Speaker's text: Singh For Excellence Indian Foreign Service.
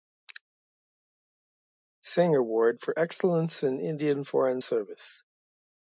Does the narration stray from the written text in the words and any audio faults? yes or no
yes